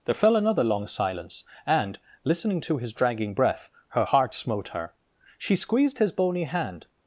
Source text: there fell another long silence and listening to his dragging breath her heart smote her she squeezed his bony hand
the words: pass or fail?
pass